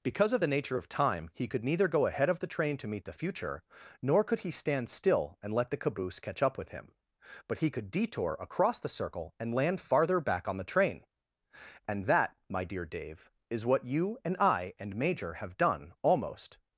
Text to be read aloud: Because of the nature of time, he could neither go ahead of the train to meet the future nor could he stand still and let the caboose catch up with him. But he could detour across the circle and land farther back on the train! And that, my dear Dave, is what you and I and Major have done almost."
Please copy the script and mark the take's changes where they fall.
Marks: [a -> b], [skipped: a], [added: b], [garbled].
Because of the nature of time, he could neither go ahead of the train to meet the future nor could he stand still and let the caboose catch up with him. But he could detour across the circle and land farther back on the train! And that, my dear Dave, is what you and I and Major have done almost."